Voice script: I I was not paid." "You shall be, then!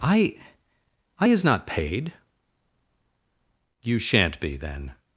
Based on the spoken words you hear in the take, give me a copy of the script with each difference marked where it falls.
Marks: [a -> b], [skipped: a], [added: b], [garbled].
I I [was -> is] not paid." "You [shall -> shan't] be, then!